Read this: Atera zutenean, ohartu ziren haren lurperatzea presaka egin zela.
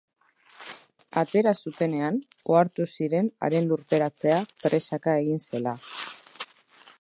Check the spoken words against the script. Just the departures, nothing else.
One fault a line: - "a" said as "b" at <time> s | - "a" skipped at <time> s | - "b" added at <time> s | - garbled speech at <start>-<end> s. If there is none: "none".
none